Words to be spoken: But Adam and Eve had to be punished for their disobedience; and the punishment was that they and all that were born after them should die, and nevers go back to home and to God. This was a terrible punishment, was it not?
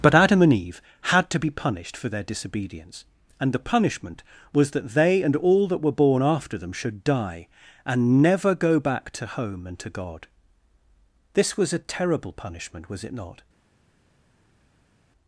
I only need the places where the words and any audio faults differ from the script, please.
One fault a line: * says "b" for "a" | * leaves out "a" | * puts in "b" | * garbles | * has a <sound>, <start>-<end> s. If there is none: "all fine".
* says "never" for "nevers"